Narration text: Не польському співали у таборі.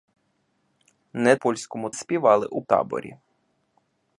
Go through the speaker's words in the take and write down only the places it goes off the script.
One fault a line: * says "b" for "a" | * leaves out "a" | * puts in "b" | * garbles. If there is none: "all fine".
all fine